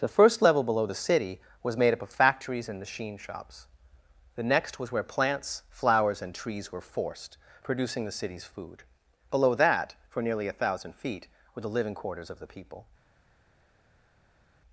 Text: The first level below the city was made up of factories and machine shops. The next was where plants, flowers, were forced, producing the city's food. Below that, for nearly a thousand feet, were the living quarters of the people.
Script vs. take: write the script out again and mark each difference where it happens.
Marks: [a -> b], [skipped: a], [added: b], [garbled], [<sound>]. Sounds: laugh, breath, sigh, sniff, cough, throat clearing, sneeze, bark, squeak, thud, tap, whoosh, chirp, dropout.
The first level below the city was made up of factories and machine shops. The next was where plants, flowers, [added: and trees] were forced, producing the city's food. Below that, for nearly a thousand feet, were the living quarters of the people.